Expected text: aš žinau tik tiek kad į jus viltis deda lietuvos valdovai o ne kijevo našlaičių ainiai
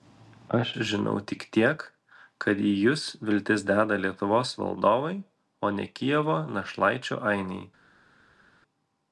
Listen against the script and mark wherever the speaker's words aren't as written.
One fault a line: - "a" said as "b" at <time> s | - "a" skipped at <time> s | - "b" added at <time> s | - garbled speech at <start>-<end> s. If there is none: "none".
none